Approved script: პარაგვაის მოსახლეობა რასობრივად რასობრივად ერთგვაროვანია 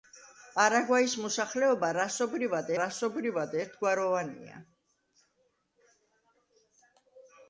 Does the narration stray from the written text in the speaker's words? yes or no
no